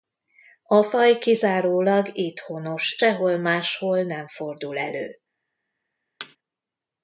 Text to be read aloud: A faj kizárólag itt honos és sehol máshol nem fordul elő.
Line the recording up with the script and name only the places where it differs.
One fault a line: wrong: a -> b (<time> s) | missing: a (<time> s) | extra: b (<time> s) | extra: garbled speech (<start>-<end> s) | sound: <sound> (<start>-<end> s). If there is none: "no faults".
missing: és (3.0 s)
sound: thud (6.2-6.4 s)